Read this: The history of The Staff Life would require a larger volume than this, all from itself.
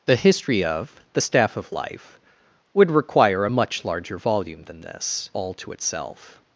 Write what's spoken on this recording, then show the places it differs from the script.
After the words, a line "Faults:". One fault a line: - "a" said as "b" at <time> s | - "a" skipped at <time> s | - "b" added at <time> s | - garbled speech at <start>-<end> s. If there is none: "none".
The history of The Staff of Life would require a much larger volume than this, all to itself.
Faults:
- "of" added at 1.6 s
- "much" added at 3.5 s
- "from" said as "to" at 5.5 s